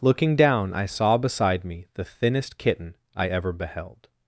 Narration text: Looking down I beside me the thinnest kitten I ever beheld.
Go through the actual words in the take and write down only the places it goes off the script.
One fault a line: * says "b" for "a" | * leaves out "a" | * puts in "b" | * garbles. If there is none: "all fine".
* puts in "saw"